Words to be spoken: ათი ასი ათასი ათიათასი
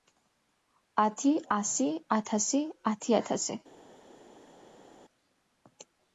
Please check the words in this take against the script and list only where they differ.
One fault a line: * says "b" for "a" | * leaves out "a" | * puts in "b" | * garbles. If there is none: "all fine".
all fine